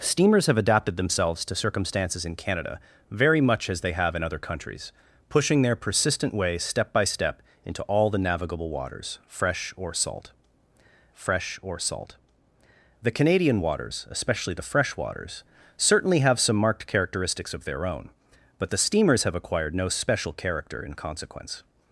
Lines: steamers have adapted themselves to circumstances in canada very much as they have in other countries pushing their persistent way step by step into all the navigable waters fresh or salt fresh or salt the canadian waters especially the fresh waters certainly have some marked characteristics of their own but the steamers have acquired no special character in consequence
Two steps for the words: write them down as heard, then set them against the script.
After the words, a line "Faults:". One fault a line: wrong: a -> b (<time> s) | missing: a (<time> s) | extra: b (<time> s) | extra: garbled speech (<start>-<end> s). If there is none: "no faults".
steamers have adapted themselves to circumstances in canada very much as they have in other countries pushing their persistent way step by step into all the navigable waters fresh or salt fresh or salt the canadian waters especially the fresh waters certainly have some marked characteristics of their own but the steamers have acquired no special character in consequence
Faults:
no faults